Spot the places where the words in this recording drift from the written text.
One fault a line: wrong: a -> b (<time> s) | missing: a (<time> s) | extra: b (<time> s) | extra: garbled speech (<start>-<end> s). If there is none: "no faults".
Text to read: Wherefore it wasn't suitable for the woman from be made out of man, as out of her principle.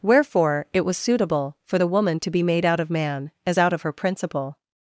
wrong: wasn't -> was (0.8 s)
wrong: from -> to (2.2 s)